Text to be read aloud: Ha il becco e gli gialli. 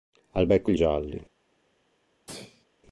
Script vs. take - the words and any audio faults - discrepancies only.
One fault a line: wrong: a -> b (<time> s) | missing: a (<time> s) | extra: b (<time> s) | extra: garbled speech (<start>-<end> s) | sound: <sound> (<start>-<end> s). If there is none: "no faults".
sound: sneeze (2.3-2.7 s)